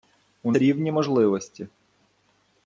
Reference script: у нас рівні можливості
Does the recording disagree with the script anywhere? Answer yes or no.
yes